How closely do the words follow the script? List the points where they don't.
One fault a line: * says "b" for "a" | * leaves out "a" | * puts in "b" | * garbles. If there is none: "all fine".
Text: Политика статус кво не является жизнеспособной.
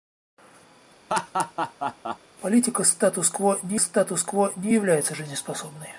* puts in "статус кво не"